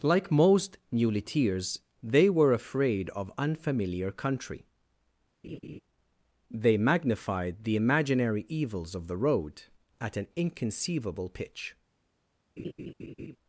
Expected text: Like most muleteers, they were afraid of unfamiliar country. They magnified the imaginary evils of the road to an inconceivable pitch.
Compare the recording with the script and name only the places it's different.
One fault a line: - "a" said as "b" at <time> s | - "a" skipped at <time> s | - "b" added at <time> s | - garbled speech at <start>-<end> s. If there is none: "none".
- "to" said as "at" at 10.0 s